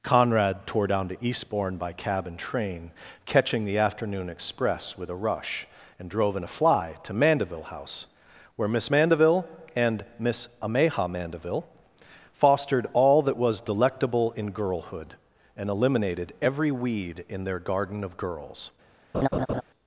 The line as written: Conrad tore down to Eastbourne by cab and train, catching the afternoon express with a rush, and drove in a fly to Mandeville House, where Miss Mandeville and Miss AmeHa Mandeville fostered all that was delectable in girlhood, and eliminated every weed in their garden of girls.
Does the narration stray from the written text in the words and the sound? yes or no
yes